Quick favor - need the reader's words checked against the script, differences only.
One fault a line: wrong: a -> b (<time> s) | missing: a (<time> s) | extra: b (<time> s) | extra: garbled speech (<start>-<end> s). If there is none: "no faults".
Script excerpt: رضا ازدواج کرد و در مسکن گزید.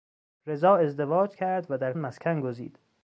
no faults